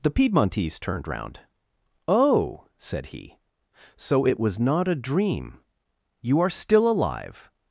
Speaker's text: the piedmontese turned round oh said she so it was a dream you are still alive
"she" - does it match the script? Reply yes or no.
no